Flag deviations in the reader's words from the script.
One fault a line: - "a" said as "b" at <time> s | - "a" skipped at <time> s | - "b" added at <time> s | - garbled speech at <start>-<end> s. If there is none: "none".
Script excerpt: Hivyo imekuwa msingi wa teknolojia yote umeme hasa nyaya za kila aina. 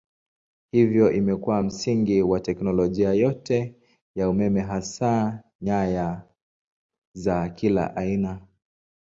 - "ya" added at 4.2 s